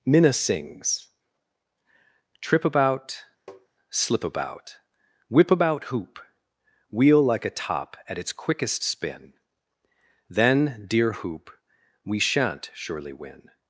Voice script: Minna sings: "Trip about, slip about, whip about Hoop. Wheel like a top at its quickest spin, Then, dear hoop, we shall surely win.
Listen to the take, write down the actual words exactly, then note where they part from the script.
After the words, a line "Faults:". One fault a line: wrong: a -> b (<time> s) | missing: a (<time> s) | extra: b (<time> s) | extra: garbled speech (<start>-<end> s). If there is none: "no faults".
Minna sings: "Trip about, slip about, whip about Hoop. Wheel like a top at its quickest spin, Then, dear hoop, we shan't surely win.
Faults:
wrong: shall -> shan't (12.2 s)